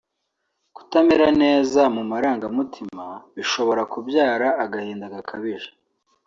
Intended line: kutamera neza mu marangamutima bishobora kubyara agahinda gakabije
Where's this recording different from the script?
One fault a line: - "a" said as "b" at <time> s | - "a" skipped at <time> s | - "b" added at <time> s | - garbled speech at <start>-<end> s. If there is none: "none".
none